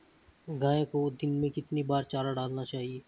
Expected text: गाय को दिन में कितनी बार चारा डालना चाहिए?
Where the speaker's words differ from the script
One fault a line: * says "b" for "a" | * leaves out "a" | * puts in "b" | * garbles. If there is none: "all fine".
all fine